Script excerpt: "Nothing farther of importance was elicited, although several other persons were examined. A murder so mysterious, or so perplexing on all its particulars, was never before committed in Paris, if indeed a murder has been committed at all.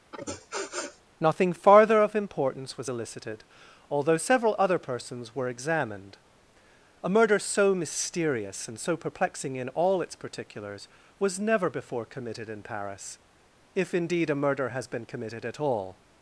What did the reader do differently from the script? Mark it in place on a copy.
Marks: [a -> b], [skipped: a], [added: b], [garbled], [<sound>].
[sniff] "Nothing farther of importance was elicited, although several other persons were examined. A murder so mysterious, [or -> and] so perplexing [on -> in] all its particulars, was never before committed in Paris, if indeed a murder has been committed at all.